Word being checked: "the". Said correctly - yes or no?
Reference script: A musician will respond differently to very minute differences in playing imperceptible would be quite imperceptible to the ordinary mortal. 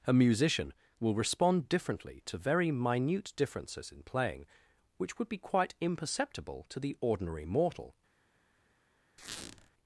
yes